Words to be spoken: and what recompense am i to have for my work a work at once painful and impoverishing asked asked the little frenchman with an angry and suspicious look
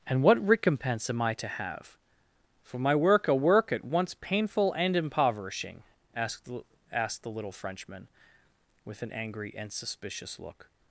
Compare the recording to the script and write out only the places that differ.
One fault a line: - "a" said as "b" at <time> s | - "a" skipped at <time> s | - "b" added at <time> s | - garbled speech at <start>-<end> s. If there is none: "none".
none